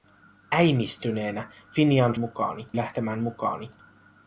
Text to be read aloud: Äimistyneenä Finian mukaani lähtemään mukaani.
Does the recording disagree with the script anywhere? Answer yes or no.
no